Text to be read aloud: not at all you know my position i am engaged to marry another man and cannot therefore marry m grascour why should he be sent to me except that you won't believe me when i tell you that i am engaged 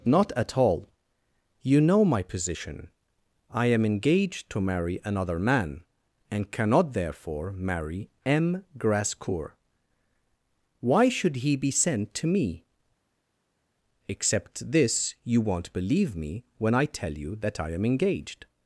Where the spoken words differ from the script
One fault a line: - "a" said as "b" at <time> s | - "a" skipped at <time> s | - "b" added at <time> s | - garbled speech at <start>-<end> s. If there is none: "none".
- "that" said as "this" at 14.7 s